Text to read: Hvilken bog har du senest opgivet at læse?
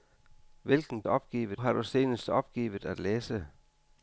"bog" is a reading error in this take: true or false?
true